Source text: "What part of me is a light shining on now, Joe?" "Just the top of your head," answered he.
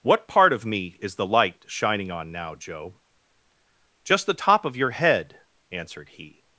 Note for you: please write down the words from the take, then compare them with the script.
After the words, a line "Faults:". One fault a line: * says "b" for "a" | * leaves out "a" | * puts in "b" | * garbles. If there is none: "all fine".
"What part of me is the light shining on now, Joe?" "Just the top of your head," answered he.
Faults:
* says "the" for "a"